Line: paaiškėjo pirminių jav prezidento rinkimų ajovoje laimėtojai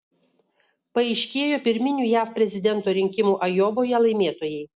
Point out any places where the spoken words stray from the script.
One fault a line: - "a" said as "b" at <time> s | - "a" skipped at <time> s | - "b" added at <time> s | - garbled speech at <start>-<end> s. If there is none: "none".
none